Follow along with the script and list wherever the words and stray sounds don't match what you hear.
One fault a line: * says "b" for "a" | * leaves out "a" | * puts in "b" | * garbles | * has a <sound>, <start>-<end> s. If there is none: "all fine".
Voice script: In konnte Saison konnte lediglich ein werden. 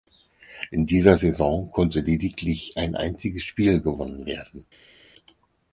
* says "dieser" for "konnte"
* puts in "einziges Spiel gewonnen"